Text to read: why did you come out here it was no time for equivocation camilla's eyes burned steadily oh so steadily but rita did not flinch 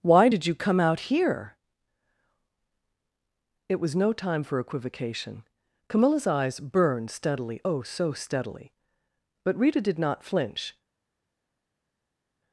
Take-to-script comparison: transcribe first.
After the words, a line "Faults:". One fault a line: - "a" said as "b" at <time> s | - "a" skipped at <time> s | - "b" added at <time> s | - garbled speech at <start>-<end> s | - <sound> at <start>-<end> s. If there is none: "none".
why did you come out here it was no time for equivocation camilla's eyes burned steadily oh so steadily but rita did not flinch
Faults:
none